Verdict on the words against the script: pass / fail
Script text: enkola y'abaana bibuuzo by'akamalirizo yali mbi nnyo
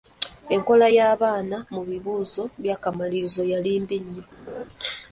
fail